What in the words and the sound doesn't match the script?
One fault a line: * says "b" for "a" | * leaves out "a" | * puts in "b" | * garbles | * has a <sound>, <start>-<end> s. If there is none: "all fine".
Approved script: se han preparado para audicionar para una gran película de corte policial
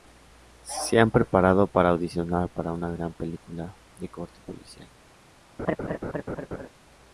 * has a laugh, 5.6-6.7 s